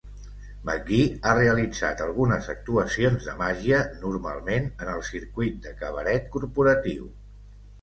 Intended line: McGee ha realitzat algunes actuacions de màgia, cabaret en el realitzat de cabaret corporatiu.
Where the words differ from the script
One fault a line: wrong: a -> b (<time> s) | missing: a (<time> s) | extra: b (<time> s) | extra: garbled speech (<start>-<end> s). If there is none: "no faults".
wrong: cabaret -> normalment (4.0 s)
wrong: realitzat -> circuit (5.1 s)